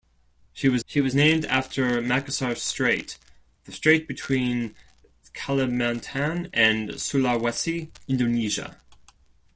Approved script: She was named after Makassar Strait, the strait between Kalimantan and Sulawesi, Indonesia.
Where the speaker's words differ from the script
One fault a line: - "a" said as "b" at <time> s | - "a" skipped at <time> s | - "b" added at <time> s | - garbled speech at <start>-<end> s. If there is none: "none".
- "she was" added at 0.8 s